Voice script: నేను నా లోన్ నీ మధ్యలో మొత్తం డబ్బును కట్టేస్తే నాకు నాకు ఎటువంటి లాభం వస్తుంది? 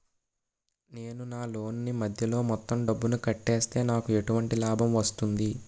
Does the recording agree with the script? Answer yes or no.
no